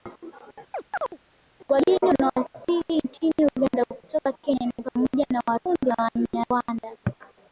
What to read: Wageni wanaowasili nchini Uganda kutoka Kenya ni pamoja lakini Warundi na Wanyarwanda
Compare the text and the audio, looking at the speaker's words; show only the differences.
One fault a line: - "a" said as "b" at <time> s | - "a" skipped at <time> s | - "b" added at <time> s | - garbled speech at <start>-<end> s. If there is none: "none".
- "lakini" said as "na" at 5.3 s